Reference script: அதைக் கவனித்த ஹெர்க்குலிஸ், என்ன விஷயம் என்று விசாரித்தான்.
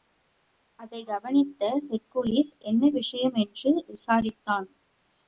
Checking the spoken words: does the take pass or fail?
pass